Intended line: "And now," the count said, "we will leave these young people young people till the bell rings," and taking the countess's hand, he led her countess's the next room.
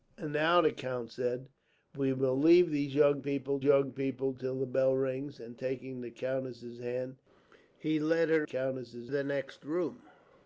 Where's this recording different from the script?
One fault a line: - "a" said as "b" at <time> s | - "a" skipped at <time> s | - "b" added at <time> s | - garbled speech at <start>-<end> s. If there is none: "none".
none